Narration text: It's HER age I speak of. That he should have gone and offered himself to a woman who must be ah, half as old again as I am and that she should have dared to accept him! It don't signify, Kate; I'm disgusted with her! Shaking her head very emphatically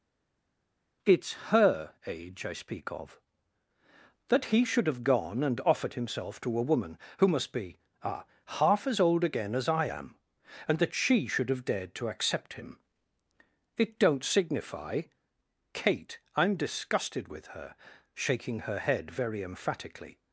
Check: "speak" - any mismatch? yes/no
no